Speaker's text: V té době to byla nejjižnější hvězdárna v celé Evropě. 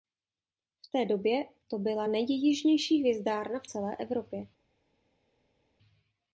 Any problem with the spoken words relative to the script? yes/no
no